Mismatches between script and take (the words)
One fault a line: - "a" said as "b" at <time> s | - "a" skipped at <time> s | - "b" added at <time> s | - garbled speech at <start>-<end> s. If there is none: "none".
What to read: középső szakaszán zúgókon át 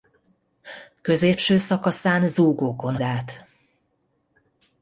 none